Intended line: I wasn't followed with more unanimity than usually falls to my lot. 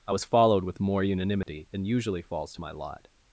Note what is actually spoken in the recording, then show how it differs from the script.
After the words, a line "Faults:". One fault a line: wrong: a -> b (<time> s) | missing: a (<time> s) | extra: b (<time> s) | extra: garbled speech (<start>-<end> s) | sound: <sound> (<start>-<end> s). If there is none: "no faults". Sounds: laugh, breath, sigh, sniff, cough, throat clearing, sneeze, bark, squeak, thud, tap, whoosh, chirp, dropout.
I was followed with more unanimity than usually falls to my lot.
Faults:
wrong: wasn't -> was (0.1 s)
sound: dropout (1.4-1.5 s)